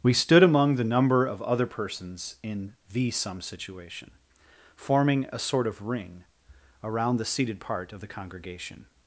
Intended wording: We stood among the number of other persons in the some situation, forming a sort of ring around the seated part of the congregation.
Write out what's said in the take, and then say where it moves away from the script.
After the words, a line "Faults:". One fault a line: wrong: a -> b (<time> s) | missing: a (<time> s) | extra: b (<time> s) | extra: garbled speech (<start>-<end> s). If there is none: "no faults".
We stood among the number of other persons in the some situation, forming a sort of ring around the seated part of the congregation.
Faults:
no faults